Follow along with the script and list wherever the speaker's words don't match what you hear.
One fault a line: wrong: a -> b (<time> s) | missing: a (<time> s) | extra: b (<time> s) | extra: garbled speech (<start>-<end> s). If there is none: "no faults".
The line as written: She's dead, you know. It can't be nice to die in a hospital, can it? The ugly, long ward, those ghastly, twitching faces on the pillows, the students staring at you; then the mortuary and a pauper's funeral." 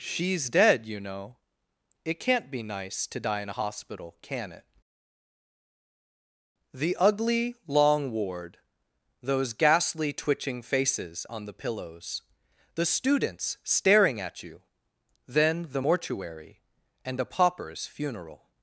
no faults